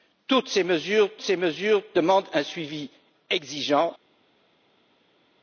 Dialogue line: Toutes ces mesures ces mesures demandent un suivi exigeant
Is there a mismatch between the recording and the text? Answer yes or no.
no